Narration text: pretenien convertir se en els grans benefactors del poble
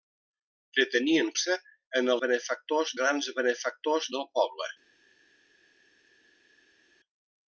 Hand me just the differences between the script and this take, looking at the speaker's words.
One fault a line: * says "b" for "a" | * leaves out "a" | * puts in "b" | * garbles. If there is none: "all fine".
* leaves out "convertir"
* says "benefactors" for "els"